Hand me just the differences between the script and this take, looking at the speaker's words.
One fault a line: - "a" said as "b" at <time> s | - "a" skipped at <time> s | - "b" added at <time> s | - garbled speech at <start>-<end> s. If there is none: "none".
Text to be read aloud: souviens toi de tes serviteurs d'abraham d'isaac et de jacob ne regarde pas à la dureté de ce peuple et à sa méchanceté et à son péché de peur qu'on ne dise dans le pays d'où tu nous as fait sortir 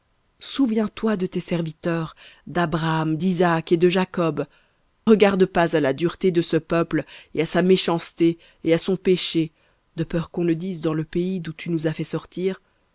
- "ne" skipped at 4.4 s